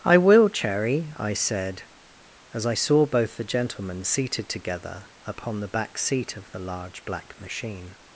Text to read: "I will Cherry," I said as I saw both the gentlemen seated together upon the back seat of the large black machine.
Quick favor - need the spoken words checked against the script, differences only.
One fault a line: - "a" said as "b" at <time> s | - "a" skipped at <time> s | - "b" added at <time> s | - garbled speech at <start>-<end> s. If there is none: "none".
none